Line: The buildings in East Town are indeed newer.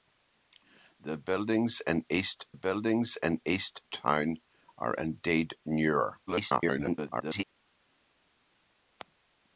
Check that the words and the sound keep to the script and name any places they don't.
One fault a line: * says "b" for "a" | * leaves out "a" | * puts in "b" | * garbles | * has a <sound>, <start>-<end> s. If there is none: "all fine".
* puts in "buildings in East"
* garbles